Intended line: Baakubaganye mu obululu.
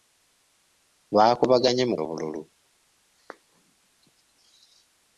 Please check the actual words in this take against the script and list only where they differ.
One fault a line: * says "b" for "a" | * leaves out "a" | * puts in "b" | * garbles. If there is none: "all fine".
all fine